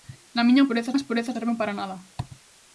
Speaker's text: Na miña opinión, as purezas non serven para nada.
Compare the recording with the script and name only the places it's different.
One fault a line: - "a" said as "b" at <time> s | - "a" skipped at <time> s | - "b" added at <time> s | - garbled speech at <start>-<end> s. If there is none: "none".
- "opinión" said as "purezas" at 0.7 s
- "non" skipped at 1.4 s